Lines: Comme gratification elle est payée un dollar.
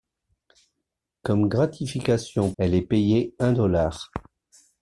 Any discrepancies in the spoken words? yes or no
no